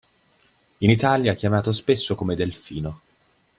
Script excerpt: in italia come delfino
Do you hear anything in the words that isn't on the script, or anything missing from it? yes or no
yes